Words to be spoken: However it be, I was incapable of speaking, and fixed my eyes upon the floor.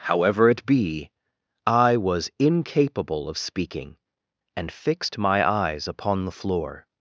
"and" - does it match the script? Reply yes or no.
yes